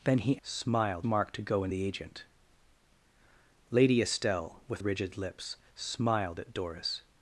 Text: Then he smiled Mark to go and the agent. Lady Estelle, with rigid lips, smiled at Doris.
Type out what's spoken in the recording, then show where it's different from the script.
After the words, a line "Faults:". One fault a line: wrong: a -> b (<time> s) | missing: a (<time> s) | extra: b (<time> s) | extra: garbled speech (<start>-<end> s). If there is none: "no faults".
Then he smiled Mark to go and the agent. Lady Estelle, with rigid lips, smiled at Doris.
Faults:
no faults